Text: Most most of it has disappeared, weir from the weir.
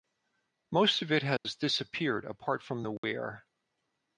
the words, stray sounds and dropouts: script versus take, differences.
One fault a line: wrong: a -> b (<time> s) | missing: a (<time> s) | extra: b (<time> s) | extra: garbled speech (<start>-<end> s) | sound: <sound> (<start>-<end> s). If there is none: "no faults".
missing: most (1.0 s)
sound: dropout (1.4-1.4 s)
wrong: weir -> apart (2.2 s)
sound: dropout (3.0-3.0 s)